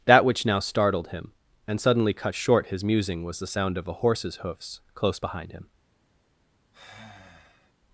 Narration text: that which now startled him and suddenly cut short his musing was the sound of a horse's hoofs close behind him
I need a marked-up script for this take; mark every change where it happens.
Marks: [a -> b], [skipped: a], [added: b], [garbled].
that which now startled him and suddenly cut short his musing was the sound of a horse's hoofs close behind him